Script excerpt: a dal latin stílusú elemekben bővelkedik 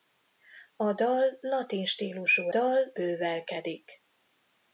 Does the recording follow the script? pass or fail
fail